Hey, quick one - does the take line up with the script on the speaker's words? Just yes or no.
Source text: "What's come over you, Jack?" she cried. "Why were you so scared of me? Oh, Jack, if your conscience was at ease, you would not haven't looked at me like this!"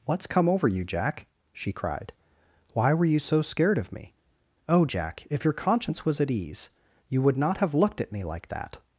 no